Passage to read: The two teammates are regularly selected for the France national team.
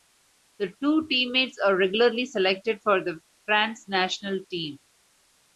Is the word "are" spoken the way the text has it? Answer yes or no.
yes